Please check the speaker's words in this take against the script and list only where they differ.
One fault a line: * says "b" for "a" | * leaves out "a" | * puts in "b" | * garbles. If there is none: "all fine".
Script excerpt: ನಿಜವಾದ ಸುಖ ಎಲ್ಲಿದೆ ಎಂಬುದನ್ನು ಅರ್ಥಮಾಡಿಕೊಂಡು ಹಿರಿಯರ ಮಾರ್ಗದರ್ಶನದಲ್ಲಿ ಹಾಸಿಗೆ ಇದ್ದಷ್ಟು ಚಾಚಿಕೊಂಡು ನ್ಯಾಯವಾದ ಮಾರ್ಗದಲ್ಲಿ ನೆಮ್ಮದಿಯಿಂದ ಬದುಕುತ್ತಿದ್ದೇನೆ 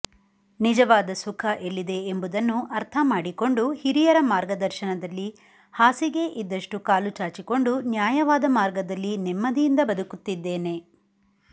* puts in "ಕಾಲು"